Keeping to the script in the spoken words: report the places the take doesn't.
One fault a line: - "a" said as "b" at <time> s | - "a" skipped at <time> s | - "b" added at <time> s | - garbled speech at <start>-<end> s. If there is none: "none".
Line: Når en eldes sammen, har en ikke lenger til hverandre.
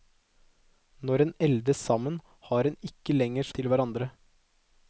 none